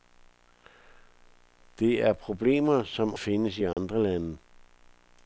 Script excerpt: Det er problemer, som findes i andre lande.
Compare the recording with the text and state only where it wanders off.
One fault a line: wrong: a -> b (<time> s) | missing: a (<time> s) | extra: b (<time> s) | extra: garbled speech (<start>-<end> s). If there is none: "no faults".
no faults